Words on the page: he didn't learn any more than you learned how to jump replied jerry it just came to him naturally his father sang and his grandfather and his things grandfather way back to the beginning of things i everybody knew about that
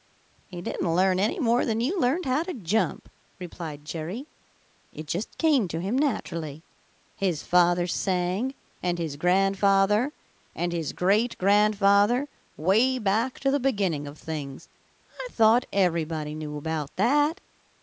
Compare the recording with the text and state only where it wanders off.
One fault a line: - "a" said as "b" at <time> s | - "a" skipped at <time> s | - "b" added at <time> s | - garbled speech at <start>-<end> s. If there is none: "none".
- "things" said as "great" at 10.9 s
- "thought" added at 15.3 s